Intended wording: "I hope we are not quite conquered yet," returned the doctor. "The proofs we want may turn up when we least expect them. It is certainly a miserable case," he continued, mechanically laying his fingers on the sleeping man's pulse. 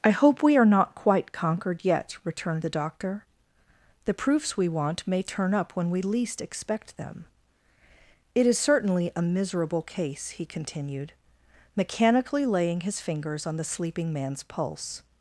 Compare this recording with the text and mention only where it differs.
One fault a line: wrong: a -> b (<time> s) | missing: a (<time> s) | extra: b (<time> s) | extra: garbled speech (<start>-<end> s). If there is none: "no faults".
no faults